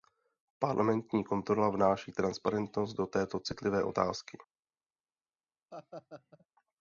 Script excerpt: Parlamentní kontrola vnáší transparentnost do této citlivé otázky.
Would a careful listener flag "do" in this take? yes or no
no